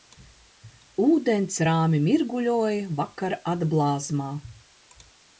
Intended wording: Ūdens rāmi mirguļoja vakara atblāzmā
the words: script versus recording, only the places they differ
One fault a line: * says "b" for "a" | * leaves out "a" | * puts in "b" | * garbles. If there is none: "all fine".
all fine